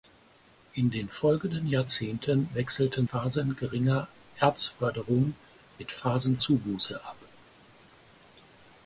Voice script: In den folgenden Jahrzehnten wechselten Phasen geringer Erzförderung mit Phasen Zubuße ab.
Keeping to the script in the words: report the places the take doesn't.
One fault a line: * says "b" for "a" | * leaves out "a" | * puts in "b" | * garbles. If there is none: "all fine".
all fine